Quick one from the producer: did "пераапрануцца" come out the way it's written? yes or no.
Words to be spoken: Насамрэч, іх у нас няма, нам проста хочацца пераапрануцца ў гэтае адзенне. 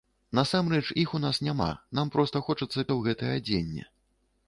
no